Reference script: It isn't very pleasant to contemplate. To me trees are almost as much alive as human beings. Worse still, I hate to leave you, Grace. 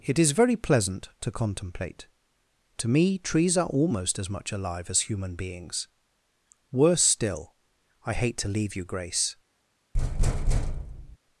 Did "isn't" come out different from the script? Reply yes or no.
yes